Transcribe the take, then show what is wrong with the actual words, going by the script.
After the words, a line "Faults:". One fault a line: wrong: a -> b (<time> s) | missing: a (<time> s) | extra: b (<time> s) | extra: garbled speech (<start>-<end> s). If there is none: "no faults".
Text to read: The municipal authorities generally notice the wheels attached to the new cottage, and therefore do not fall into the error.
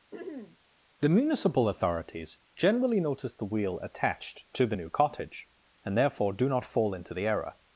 The municipal authorities generally notice the wheel attached to the new cottage, and therefore do not fall into the error.
Faults:
wrong: wheels -> wheel (3.4 s)